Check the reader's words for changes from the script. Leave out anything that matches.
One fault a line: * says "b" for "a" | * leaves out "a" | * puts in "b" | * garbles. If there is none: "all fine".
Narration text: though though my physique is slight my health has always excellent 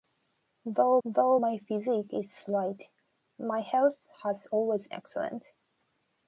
all fine